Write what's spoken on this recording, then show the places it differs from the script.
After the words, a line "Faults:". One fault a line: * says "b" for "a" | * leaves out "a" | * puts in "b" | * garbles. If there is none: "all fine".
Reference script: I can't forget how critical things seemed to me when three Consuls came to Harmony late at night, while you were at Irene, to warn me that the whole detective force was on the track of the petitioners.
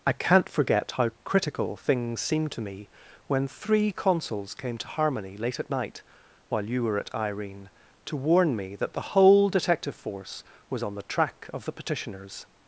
I can't forget how critical things seemed to me when three Consuls came to Harmony late at night, while you were at Irene, to warn me that the whole detective force was on the track of the petitioners.
Faults:
all fine